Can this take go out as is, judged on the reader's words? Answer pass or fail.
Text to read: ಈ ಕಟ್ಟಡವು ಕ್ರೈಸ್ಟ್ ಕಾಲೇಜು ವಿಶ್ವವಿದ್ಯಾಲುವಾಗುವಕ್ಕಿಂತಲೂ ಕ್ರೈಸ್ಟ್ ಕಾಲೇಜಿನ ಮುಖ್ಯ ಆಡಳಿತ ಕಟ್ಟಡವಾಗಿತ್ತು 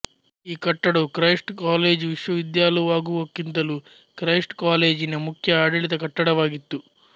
pass